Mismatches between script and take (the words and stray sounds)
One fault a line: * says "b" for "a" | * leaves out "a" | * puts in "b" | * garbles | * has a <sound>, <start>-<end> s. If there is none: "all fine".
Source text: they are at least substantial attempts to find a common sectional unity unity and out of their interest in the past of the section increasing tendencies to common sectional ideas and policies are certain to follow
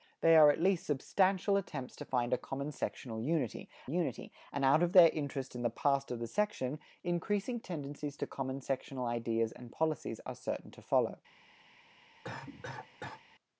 * has a cough, 12.2-13.2 s